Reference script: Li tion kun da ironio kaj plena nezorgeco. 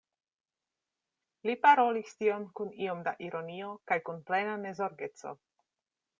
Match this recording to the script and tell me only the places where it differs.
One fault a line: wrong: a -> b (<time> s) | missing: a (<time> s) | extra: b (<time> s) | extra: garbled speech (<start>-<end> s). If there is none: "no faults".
extra: parolis (1.6 s)
extra: iom (2.9 s)
extra: kun (4.1 s)